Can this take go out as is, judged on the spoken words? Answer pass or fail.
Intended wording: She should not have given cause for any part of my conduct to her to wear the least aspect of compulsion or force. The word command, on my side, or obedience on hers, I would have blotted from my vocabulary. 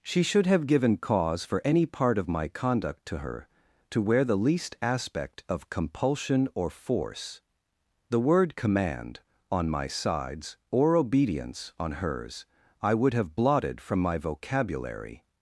fail